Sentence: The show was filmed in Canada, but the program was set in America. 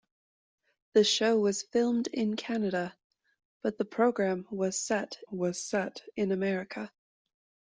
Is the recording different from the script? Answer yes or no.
yes